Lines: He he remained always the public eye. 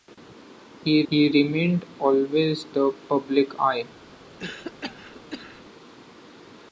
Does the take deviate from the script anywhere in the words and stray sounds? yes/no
yes